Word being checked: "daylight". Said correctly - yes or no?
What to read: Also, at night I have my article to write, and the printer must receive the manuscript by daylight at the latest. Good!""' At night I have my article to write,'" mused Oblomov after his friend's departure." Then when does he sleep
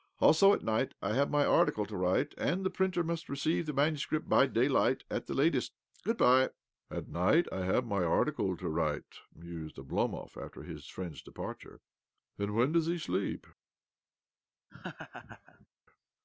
yes